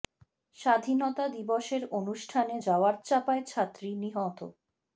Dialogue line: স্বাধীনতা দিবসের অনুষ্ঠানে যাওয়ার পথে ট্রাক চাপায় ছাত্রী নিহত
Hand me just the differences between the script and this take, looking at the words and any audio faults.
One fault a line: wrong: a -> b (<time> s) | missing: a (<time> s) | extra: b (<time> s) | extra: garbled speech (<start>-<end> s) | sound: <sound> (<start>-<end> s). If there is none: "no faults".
missing: পথে ট্রাক (3.0 s)